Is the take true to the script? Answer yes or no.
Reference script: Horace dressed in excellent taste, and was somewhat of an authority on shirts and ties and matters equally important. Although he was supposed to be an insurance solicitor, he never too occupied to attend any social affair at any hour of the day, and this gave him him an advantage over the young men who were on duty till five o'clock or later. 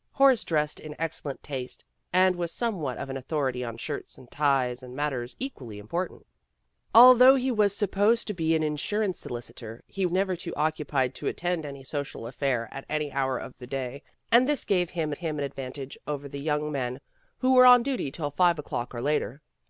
yes